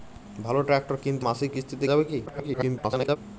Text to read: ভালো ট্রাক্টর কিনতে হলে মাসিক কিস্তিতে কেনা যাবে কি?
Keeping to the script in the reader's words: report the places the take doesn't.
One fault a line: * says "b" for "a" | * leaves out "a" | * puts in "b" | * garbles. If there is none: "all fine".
* leaves out "হলে"
* leaves out "কেনা"
* garbles